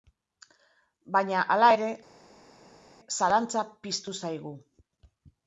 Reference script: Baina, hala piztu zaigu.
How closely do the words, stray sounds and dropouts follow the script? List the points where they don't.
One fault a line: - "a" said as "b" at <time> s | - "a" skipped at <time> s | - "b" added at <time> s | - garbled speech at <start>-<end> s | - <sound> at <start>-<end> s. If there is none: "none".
- "ere zalantza" added at 1.8 s